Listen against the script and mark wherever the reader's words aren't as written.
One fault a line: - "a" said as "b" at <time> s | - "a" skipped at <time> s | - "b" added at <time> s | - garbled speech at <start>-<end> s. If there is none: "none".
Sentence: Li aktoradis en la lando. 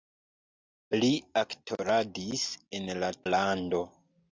none